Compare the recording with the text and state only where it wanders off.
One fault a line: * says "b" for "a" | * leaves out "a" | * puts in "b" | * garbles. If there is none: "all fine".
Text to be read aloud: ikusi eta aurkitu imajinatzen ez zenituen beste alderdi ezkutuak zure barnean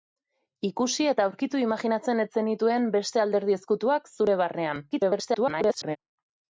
* garbles